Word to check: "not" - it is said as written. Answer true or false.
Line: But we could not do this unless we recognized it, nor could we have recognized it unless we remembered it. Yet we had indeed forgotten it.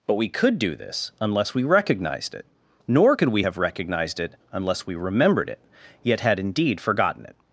false